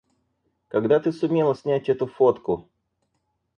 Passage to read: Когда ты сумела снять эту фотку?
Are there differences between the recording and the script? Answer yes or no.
no